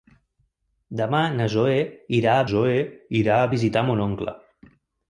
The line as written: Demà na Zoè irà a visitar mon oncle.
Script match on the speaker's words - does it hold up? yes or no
no